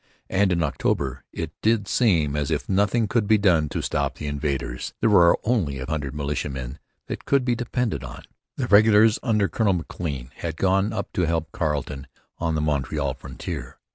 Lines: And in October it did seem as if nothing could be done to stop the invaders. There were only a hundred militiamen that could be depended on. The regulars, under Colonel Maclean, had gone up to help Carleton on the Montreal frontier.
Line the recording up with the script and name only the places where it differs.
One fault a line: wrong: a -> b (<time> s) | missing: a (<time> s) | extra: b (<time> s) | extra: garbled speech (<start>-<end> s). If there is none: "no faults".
no faults